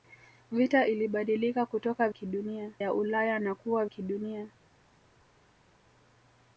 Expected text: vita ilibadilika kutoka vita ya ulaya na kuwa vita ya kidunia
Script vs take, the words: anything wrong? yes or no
yes